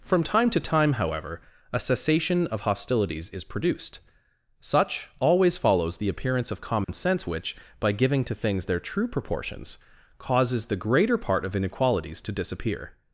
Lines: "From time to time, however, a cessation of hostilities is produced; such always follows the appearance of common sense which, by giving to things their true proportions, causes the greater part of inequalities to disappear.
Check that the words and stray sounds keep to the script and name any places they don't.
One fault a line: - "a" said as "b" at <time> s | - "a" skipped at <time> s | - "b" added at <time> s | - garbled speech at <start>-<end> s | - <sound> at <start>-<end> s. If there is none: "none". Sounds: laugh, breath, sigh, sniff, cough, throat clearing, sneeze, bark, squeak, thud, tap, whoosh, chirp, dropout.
- dropout at 6.8-6.9 s